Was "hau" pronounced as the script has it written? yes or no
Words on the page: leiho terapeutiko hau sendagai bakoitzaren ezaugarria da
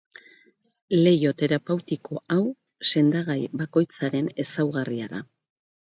yes